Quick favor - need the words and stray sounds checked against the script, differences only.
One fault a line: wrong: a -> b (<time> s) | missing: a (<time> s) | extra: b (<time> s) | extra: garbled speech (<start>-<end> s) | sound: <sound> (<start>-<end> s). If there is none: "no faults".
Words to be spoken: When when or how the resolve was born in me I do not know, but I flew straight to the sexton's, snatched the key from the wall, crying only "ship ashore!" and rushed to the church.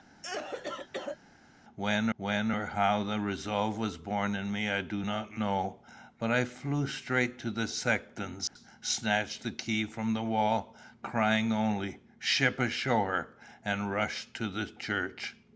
sound: cough (0.2-1.2 s)
sound: dropout (8.5-8.6 s)